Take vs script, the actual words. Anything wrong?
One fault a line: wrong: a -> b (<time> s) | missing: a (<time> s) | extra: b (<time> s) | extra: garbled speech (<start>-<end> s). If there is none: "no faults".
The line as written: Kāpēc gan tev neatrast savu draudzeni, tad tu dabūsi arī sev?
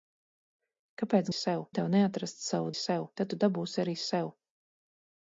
wrong: gan -> sev (1.4 s)
wrong: draudzeni -> sev (2.8 s)